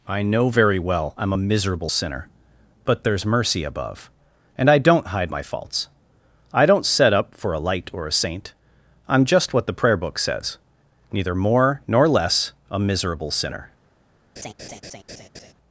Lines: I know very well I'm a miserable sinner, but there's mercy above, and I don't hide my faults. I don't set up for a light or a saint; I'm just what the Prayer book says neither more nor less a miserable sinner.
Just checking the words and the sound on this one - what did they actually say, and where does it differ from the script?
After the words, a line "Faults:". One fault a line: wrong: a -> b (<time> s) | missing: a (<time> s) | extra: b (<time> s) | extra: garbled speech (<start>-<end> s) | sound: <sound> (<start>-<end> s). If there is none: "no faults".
I know very well I'm a miserable sinner, but there's mercy above, and I don't hide my faults. I don't set up for a light or a saint; I'm just what the Prayer book says neither more nor less a miserable sinner.
Faults:
sound: laugh (14.4-15.5 s)